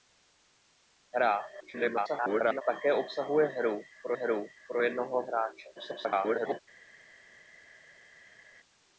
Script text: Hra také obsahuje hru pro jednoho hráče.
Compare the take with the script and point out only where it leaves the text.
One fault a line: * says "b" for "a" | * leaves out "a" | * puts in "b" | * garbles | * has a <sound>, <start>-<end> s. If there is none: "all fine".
* garbles
* puts in "hru pro"
* garbles